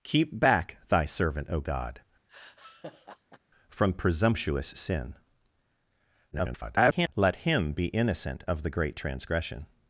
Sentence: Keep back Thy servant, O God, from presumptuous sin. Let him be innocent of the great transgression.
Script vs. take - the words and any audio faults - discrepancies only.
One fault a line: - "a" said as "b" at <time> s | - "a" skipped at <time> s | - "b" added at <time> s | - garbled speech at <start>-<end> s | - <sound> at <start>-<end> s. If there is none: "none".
- laugh at 2.3-3.4 s
- garbled speech at 6.3-7.1 s